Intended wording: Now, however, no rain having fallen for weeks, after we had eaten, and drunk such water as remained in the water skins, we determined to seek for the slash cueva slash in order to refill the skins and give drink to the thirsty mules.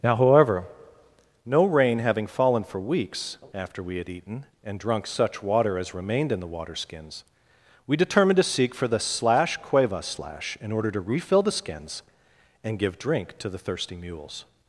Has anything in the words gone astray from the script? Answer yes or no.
no